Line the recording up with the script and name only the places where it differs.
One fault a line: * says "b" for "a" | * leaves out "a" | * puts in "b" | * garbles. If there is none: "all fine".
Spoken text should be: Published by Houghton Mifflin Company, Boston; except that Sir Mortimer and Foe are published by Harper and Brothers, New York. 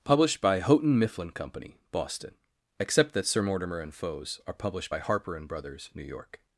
* says "Foes" for "Foe"